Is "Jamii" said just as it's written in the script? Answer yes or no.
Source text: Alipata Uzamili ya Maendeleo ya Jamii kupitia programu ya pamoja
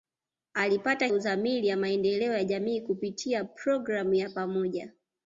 yes